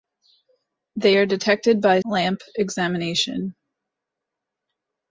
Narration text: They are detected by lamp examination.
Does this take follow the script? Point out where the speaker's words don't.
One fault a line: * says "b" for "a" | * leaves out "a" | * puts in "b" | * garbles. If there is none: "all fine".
all fine